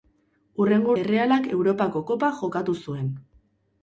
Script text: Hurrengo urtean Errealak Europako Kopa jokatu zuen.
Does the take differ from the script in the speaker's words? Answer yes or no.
yes